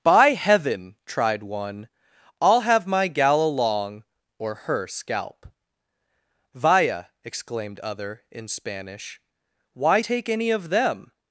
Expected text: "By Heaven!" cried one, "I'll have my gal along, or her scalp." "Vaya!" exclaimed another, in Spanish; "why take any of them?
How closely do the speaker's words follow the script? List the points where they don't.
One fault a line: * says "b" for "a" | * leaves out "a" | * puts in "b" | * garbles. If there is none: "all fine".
* says "tried" for "cried"
* says "other" for "another"